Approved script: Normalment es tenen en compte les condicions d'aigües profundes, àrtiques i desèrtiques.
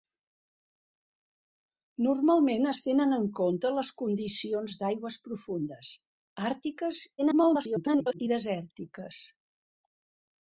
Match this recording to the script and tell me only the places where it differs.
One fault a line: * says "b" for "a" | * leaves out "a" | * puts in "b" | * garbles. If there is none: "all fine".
* garbles